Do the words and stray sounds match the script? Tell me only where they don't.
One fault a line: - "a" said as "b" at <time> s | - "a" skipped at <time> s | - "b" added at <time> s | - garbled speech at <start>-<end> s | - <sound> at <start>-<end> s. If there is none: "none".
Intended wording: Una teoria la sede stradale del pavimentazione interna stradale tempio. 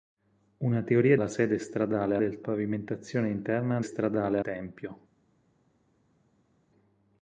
none